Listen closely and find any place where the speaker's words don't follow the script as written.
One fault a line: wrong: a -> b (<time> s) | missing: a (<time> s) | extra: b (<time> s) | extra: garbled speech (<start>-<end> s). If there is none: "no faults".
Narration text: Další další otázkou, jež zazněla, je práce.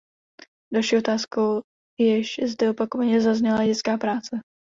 missing: další (1.0 s)
extra: zde opakovaně (2.5 s)
extra: dětská (3.7 s)